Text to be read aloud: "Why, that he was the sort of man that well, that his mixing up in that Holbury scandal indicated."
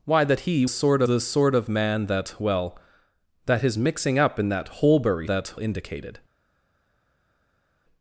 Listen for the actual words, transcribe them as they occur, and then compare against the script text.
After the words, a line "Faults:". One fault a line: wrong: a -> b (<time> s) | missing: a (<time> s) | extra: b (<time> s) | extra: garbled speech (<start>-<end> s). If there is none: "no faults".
"Why, that he sort the sort of man that well, that his mixing up in that Holbury that indicated."
Faults:
wrong: was -> sort (0.7 s)
wrong: scandal -> that (5.2 s)